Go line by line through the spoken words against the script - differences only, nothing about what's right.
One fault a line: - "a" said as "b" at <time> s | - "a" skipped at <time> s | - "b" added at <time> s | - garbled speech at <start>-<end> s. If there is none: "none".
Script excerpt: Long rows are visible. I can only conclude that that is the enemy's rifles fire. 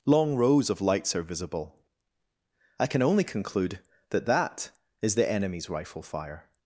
- "of lights" added at 0.7 s
- "rifles" said as "rifle" at 5.7 s